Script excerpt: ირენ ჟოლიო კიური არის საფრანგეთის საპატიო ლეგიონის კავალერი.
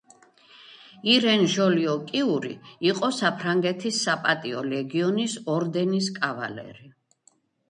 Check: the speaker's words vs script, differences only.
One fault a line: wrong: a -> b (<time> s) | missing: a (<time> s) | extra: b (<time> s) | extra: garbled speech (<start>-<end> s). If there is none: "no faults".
wrong: არის -> იყო (2.9 s)
extra: ორდენის (5.6 s)